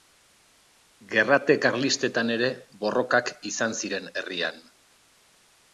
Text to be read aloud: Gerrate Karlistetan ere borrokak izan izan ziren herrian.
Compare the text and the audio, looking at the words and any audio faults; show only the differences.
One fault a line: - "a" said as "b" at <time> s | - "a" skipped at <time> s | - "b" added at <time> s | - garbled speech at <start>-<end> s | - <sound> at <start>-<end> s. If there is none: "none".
- "izan" skipped at 3.8 s